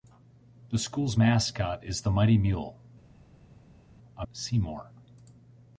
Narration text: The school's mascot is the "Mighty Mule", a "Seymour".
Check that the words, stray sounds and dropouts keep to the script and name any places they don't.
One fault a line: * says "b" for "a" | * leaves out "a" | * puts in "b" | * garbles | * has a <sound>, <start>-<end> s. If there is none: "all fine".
all fine